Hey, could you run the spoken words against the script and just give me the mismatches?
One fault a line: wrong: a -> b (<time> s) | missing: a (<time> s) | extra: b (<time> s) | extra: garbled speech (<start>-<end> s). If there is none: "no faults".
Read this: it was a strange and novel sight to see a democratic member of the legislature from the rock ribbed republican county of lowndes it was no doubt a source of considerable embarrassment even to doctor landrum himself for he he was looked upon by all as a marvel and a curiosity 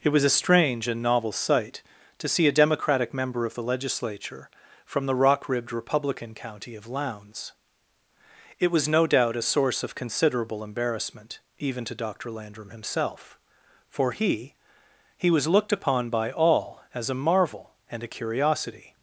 no faults